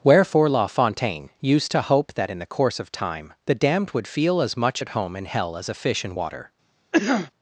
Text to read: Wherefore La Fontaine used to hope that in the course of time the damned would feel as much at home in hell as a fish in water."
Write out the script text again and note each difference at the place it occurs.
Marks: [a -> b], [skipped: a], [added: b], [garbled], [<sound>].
Wherefore La Fontaine used to hope that in the course of time the damned would feel as much at home in hell as a fish in water." [cough]